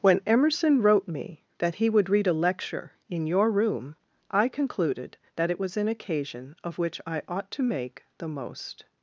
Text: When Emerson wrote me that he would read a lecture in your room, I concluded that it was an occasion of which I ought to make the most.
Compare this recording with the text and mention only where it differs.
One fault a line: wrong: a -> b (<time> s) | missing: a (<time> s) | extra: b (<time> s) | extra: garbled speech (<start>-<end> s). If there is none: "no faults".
no faults